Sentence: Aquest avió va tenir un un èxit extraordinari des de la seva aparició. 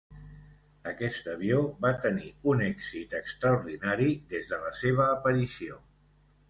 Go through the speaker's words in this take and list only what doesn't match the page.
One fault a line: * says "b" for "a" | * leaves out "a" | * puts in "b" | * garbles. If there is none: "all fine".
* leaves out "un"